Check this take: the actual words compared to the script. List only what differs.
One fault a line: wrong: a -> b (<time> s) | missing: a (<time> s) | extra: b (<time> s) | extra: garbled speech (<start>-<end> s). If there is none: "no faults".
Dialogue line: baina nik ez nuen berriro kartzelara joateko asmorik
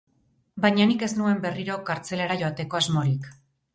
no faults